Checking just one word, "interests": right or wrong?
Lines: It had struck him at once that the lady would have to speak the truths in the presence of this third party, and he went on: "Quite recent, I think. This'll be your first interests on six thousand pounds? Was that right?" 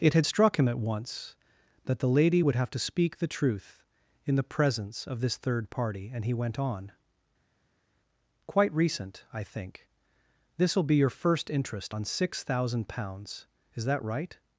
wrong